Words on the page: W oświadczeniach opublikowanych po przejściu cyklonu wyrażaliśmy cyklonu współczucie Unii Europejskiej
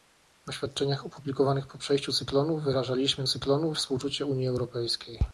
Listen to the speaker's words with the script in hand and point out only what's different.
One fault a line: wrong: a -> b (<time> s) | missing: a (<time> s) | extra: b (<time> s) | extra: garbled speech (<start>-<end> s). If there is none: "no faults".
no faults